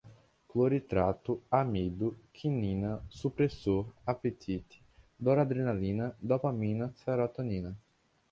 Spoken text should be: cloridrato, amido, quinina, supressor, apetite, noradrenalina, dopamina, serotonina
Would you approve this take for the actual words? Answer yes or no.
yes